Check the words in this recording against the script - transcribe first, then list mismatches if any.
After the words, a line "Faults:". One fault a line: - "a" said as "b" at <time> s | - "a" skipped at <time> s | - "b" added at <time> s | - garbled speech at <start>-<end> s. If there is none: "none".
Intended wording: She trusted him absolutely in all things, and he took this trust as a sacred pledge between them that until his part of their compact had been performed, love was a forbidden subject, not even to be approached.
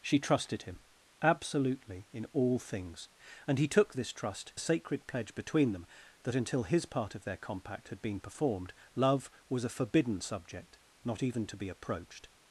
She trusted him absolutely in all things, and he took this trust a sacred pledge between them that until his part of their compact had been performed, love was a forbidden subject, not even to be approached.
Faults:
- "as" skipped at 4.5 s